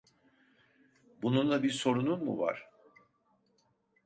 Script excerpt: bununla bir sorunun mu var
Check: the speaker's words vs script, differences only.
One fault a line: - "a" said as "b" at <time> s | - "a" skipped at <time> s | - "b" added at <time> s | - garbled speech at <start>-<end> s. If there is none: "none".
none